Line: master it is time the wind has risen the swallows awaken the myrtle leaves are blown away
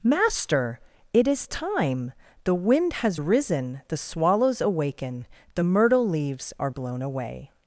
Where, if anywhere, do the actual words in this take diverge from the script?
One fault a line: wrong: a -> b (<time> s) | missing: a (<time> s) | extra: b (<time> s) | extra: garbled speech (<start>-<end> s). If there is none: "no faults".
no faults